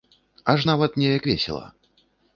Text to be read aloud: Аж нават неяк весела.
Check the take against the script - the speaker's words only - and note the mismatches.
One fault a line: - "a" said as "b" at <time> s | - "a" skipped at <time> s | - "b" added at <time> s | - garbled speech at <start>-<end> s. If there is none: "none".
none